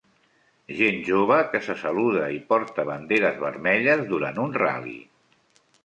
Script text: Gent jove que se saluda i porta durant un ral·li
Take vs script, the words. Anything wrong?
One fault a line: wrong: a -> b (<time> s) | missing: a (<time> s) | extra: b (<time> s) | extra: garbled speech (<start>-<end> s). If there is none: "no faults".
extra: banderes vermelles (2.9 s)